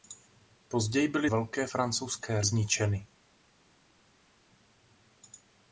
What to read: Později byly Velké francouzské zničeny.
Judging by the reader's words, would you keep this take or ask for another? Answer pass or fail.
pass